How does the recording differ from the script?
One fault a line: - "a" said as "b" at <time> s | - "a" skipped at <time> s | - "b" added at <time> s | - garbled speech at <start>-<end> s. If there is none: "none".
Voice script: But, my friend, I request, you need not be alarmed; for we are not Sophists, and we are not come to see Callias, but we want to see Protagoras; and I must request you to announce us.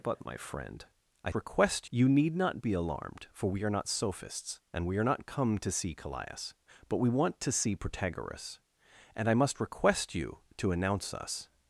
none